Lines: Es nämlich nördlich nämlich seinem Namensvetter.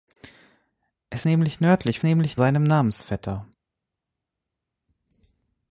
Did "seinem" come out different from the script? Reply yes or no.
no